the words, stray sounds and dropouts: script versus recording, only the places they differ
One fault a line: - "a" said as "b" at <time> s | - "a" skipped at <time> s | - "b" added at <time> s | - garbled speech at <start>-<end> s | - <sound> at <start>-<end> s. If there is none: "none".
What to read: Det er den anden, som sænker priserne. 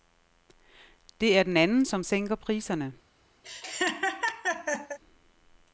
- laugh at 3.4-5.0 s